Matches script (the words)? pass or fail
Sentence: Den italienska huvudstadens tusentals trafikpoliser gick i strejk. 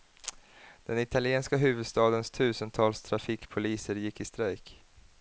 pass